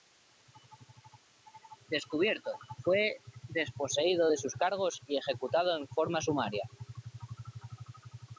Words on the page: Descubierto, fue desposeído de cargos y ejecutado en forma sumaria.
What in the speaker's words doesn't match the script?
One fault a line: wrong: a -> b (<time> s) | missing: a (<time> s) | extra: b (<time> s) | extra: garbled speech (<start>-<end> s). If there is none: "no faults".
extra: sus (4.4 s)